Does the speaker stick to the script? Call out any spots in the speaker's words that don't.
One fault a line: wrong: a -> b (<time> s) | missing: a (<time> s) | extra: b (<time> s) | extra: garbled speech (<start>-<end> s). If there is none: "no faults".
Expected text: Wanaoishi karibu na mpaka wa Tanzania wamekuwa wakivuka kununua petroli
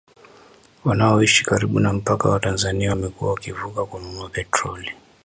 no faults